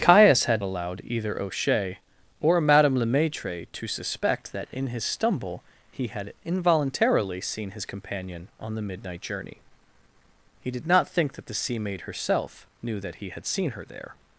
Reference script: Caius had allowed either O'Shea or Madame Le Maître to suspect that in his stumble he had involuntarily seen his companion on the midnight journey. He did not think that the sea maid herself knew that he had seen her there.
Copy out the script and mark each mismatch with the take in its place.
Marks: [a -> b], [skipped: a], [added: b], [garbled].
Caius had allowed either O'Shea or Madame Le Maître to suspect that in his stumble he had involuntarily seen his companion on the midnight journey. He did not think that the sea maid herself knew that he had seen her there.